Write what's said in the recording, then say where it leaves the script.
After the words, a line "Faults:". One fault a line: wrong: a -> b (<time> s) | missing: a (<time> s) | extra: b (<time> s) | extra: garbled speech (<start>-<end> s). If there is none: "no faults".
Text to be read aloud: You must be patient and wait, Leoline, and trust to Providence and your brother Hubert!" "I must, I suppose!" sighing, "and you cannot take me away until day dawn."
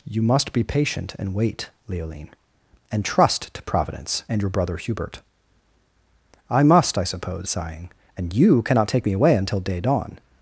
You must be patient and wait, Leoline, and trust to Providence and your brother Hubert!" "I must, I suppose!" sighing, "and you cannot take me away until day dawn."
Faults:
no faults